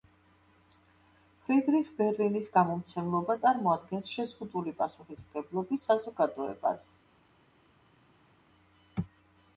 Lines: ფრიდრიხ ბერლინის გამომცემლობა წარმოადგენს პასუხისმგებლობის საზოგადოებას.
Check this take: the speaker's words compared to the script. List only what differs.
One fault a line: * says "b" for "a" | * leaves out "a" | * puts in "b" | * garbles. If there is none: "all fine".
* puts in "შეზღუდული"